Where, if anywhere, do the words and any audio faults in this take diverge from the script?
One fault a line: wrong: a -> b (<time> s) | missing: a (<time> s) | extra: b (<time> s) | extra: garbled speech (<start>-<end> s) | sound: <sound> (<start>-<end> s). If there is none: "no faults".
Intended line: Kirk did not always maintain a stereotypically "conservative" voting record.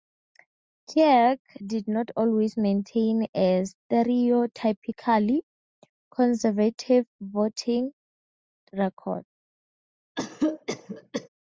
sound: cough (10.1-11.3 s)